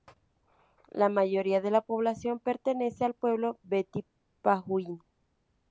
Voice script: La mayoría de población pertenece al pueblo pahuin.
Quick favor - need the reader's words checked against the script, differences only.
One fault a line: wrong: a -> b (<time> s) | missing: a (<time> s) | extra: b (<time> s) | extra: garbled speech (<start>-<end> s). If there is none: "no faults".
extra: la (1.7 s)
extra: beti (3.6 s)